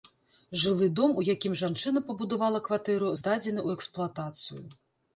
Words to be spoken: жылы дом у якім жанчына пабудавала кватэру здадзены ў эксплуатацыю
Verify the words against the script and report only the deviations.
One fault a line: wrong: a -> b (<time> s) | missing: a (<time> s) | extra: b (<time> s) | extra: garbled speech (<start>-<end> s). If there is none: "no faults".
no faults